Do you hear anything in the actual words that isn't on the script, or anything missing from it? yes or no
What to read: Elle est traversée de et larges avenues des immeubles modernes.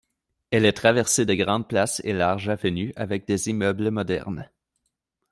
yes